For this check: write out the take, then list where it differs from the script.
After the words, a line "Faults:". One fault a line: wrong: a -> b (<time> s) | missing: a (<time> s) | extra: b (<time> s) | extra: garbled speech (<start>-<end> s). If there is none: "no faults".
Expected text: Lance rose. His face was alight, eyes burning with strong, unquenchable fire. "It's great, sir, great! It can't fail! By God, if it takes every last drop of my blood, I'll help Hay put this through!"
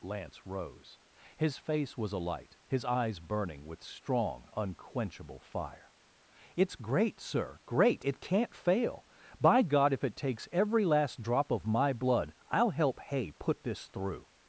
Lance rose. His face was alight, his eyes burning with strong, unquenchable fire. "It's great, sir, great! It can't fail! By God, if it takes every last drop of my blood, I'll help Hay put this through!"
Faults:
extra: his (2.7 s)